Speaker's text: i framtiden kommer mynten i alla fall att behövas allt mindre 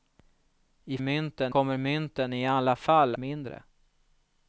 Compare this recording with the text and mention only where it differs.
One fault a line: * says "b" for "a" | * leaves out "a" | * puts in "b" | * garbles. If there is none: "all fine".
* says "mynten" for "framtiden"
* leaves out "att behövas allt"